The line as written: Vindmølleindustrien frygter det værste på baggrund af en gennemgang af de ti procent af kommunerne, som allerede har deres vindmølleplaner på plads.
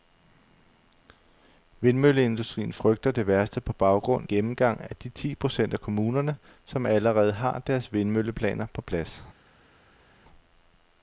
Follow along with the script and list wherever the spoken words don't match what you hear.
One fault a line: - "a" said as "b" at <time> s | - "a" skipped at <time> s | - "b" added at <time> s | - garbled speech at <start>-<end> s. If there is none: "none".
- "af en" skipped at 4.3 s